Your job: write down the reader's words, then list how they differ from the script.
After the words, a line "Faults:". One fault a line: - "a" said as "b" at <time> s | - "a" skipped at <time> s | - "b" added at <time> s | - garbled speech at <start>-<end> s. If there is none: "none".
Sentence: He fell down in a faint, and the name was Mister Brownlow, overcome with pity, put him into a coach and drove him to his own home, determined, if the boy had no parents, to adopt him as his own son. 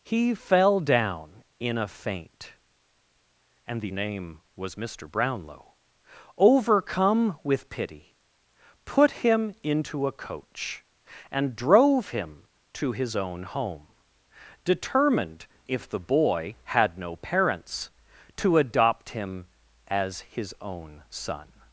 He fell down in a faint, and the name was Mister Brownlow, overcome with pity, put him into a coach and drove him to his own home, determined, if the boy had no parents, to adopt him as his own son.
Faults:
none